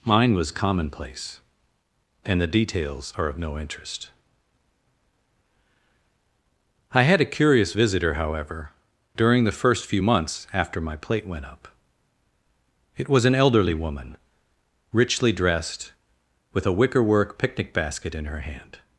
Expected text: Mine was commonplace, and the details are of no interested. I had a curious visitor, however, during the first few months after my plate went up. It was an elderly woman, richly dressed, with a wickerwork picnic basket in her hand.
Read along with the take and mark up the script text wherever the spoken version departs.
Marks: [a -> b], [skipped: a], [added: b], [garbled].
Mine was commonplace, and the details are of no [interested. -> interest] I had a curious visitor, however, during the first few months after my plate went up. It was an elderly woman, richly dressed, with a wickerwork picnic basket in her hand.